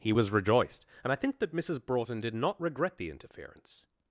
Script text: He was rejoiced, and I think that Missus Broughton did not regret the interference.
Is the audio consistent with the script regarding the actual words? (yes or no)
yes